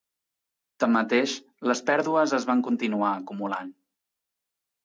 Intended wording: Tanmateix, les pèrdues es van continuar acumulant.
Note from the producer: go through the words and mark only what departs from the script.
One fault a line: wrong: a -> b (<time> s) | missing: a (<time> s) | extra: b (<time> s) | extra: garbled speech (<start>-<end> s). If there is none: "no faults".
no faults